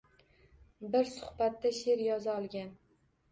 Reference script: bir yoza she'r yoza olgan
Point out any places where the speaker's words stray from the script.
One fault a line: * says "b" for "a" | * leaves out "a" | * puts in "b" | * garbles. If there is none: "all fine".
* says "suhbatda" for "yoza"